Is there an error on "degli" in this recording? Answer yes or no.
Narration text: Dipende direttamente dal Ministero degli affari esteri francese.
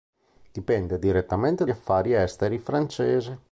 yes